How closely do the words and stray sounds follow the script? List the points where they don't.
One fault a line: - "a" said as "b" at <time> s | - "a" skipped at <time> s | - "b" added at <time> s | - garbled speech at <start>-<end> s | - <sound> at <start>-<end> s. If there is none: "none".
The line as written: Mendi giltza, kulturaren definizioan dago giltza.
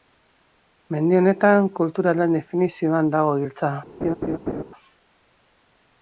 - "giltza" said as "honetan" at 1.2 s
- laugh at 4.0-4.6 s